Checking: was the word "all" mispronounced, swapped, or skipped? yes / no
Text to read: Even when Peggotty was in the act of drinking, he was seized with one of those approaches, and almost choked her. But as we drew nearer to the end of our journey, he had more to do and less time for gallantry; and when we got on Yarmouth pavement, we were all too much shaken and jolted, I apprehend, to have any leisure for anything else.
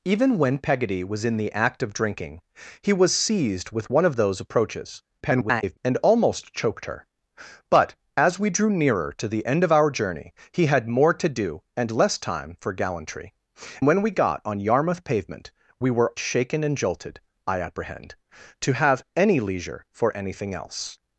yes